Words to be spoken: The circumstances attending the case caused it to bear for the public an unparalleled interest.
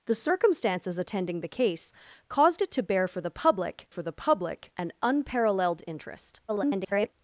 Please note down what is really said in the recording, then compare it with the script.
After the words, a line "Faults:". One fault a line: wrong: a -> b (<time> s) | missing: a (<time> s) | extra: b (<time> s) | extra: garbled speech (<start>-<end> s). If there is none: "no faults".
The circumstances attending the case caused it to bear for the public for the public an unparalleled interest. [garbled]
Faults:
extra: for the public (3.9 s)
extra: garbled speech (6.5-7.1 s)